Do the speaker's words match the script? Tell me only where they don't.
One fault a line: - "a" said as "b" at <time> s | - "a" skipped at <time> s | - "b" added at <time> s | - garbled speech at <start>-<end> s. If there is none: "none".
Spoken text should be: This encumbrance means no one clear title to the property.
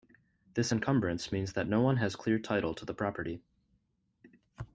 - "that" added at 1.5 s
- "has" added at 2.0 s